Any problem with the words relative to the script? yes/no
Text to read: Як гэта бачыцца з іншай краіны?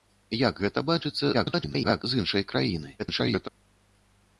yes